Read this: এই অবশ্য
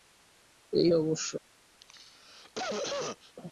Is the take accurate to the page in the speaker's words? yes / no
yes